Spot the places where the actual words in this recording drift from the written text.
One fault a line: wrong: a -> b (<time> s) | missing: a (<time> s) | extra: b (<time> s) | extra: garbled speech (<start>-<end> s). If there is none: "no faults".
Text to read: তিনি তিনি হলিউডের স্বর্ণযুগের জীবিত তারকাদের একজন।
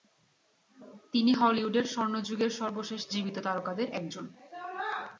missing: তিনি (1.3 s)
extra: সর্বশেষ (2.6 s)